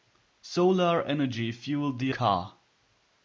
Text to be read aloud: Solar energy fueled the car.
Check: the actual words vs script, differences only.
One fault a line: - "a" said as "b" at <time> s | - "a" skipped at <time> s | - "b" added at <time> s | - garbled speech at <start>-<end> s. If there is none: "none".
none